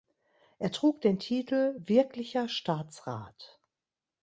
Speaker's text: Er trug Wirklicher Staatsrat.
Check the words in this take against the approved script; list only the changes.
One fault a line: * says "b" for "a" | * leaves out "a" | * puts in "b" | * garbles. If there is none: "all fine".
* puts in "den Titel"